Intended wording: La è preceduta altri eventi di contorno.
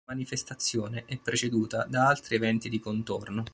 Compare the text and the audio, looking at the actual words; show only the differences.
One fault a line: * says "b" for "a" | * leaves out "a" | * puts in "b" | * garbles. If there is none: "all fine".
* puts in "manifestazione"
* puts in "da"